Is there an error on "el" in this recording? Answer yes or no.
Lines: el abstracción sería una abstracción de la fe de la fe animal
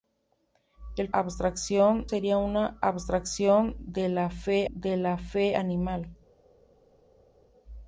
no